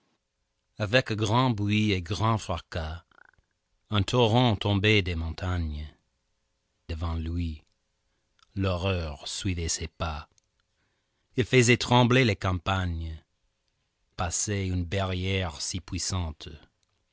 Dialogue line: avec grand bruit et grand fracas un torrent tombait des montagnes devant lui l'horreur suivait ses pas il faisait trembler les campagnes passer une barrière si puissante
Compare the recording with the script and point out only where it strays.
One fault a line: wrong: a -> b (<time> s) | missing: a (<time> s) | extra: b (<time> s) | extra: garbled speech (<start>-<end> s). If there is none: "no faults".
no faults